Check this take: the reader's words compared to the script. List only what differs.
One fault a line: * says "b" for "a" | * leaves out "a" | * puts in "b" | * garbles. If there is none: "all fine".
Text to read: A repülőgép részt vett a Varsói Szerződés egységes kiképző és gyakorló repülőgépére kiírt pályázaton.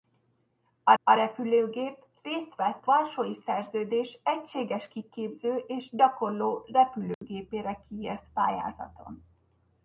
* puts in "a"
* leaves out "a"